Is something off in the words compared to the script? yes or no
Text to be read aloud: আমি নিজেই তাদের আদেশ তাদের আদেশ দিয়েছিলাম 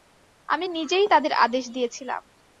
yes